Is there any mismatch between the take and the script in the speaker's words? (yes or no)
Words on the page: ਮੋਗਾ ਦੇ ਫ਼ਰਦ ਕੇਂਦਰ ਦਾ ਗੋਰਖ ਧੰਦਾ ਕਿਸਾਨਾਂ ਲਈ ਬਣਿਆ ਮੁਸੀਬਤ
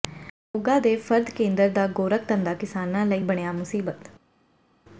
no